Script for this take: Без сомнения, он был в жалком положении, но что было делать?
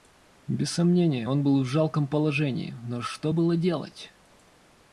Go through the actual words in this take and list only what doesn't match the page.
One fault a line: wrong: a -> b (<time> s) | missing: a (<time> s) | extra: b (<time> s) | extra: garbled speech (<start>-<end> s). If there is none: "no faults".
no faults